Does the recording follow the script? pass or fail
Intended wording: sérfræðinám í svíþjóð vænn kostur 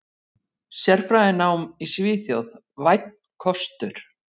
pass